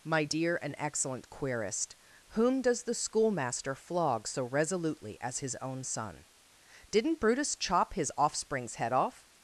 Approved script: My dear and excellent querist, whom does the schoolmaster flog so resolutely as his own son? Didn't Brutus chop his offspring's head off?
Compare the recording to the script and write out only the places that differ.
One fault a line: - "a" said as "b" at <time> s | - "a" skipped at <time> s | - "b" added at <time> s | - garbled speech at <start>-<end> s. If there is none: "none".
none